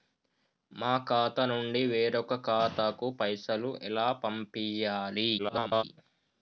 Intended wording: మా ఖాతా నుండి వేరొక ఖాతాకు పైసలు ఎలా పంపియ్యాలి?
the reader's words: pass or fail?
fail